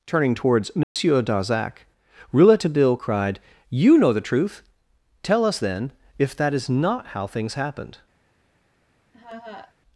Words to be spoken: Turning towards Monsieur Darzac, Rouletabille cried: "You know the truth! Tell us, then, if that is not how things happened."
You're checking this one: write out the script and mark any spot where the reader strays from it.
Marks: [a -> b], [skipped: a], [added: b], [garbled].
Turning towards Monsieur Darzac, Rouletabille cried: "You know the truth! Tell us, then, if that is not how things happened."